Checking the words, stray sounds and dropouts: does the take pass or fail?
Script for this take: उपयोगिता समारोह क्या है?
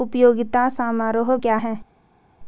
pass